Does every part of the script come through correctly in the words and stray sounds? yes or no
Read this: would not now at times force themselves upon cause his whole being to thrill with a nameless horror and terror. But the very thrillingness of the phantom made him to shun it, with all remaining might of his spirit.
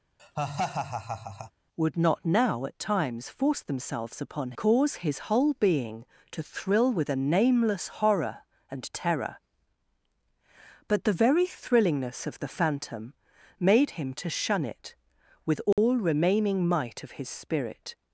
no